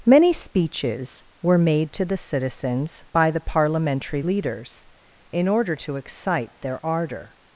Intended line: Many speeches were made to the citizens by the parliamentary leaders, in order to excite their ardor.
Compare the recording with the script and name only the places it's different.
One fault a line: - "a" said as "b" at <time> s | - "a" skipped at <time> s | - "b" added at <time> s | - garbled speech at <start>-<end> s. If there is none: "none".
none